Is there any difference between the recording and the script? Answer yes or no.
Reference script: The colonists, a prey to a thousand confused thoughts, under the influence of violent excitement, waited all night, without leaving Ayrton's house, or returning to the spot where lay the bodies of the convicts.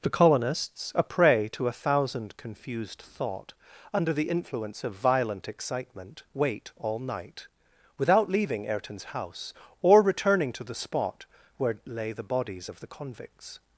yes